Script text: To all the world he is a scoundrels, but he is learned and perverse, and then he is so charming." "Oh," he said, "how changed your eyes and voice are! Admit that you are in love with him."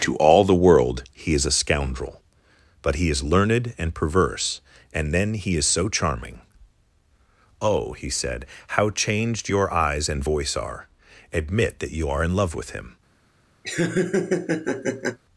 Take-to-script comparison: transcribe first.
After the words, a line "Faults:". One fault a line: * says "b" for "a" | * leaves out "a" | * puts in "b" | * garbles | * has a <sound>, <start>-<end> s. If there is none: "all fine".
To all the world he is a scoundrel, but he is learned and perverse, and then he is so charming." "Oh," he said, "how changed your eyes and voice are! Admit that you are in love with him."
Faults:
* says "scoundrel" for "scoundrels"
* has a laugh, 13.6-15.2 s